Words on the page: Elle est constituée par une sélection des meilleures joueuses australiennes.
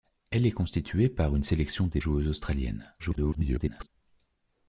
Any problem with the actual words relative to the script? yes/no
yes